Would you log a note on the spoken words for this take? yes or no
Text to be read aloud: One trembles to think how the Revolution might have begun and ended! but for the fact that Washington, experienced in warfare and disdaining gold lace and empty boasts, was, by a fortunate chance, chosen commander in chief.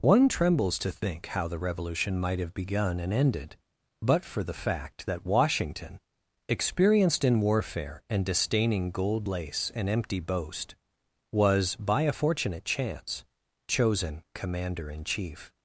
yes